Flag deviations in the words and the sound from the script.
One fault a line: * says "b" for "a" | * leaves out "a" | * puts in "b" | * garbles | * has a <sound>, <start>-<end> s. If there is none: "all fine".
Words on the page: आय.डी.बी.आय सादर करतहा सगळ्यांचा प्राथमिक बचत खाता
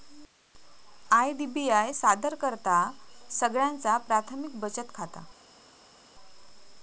all fine